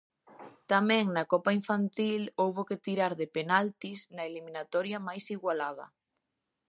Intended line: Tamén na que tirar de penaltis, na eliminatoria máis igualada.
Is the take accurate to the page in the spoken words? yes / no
no